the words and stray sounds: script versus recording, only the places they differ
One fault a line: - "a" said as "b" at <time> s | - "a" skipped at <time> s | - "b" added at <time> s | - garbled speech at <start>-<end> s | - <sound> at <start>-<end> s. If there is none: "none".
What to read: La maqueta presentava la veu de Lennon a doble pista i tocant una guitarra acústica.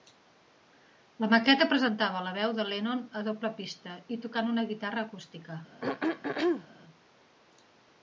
- throat clearing at 5.8-6.7 s